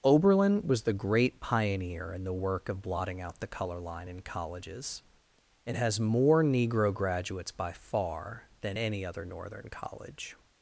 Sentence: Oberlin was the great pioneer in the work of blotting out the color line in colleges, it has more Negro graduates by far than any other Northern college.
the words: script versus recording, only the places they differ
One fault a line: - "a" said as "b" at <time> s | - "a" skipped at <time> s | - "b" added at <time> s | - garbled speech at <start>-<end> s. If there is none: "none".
none